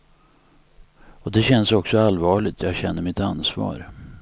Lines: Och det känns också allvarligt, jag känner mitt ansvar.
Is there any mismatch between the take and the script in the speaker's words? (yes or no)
no